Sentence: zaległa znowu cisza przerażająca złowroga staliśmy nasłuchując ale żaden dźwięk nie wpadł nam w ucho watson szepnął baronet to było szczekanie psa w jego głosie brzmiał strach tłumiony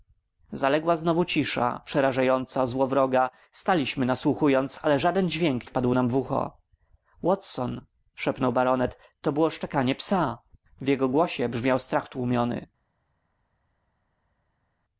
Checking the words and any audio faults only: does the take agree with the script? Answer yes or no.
no